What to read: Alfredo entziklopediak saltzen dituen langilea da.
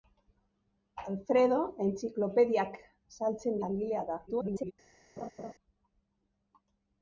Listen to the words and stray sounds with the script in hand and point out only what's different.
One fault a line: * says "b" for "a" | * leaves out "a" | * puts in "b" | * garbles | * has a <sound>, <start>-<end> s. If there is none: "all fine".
* leaves out "dituen"
* garbles
* has a laugh, 5.2-5.5 s